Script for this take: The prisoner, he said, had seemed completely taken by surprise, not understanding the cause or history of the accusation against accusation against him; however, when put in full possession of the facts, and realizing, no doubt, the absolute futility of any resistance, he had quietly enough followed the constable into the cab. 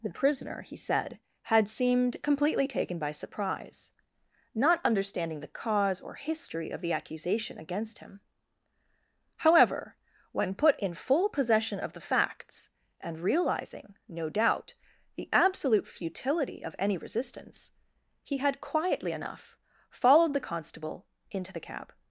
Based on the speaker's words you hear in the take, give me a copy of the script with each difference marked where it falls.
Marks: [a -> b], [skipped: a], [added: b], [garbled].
The prisoner, he said, had seemed completely taken by surprise, not understanding the cause or history of the accusation against [skipped: accusation against] him; however, when put in full possession of the facts, and realizing, no doubt, the absolute futility of any resistance, he had quietly enough followed the constable into the cab.